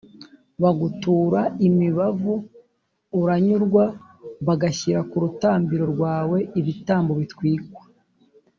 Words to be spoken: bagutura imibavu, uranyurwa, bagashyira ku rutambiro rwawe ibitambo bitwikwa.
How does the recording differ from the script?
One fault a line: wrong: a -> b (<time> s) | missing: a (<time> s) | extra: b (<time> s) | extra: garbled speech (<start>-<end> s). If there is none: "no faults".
no faults